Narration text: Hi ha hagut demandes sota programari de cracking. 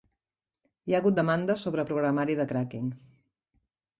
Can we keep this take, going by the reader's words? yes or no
no